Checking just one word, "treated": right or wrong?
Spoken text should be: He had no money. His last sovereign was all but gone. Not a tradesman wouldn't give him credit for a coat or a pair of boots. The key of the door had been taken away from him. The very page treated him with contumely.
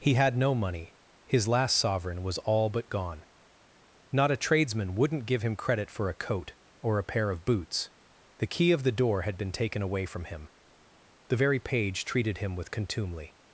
right